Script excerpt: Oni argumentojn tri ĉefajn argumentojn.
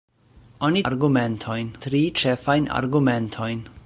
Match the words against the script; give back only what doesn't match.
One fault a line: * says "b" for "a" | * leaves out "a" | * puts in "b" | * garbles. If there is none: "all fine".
all fine